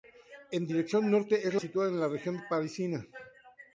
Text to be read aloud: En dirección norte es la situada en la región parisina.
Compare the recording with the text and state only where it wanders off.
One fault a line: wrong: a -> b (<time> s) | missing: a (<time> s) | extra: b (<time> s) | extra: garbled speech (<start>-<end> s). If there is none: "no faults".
no faults